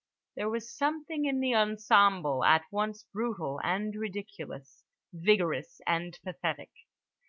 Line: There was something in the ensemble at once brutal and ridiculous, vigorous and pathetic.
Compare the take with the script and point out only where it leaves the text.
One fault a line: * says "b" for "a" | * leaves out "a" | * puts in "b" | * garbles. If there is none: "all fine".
all fine